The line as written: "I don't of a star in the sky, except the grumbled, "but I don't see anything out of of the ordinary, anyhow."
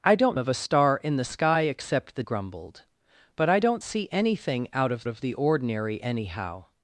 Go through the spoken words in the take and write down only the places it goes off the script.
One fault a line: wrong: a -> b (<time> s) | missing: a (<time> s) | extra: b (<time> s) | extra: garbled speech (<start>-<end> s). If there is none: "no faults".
no faults